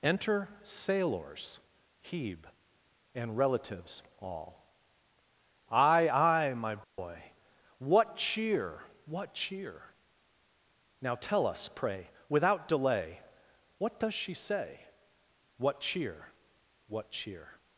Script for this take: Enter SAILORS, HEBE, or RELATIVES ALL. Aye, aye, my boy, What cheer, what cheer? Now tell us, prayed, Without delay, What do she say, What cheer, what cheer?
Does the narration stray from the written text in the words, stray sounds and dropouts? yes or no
yes